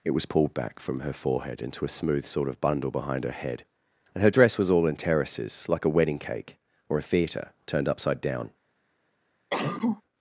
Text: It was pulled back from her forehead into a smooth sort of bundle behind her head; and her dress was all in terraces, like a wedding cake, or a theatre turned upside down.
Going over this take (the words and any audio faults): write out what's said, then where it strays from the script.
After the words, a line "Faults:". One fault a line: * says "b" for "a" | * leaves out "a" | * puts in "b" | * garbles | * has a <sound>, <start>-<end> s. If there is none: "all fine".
It was pulled back from her forehead into a smooth sort of bundle behind her head; and her dress was all in terraces, like a wedding cake, or a theatre turned upside down.
Faults:
* has a cough, 9.5-10.0 s